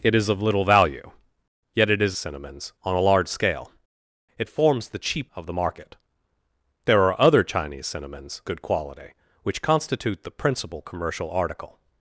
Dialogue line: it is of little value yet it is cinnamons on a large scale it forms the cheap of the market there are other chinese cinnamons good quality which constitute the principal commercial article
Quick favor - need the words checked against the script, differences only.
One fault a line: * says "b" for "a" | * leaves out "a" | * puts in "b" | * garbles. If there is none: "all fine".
all fine